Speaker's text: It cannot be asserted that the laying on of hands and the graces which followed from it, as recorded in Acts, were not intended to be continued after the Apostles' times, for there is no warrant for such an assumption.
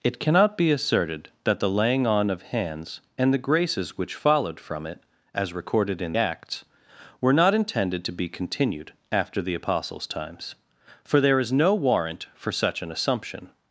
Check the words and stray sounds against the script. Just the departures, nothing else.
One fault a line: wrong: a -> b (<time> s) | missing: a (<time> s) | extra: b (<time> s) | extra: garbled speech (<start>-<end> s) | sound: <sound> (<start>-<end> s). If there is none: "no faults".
no faults